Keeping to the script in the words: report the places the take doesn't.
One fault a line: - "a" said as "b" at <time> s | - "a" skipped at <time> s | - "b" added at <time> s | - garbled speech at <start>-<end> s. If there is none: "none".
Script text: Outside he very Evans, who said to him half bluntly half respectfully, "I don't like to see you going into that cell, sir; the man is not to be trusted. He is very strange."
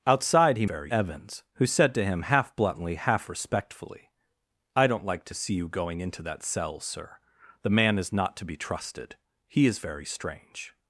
none